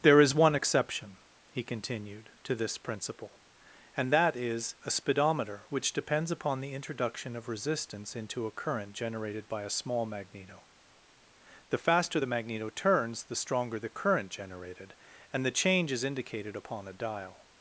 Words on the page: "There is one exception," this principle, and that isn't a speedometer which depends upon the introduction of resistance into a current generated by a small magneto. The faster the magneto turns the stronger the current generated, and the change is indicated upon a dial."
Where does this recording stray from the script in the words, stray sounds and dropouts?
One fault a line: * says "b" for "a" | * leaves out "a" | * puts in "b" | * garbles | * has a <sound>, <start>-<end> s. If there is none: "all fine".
* puts in "he continued to"
* says "is" for "isn't"